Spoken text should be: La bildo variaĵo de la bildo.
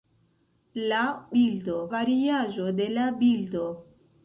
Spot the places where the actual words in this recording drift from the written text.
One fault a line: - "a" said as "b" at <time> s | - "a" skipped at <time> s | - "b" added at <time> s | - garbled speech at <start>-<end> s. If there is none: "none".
none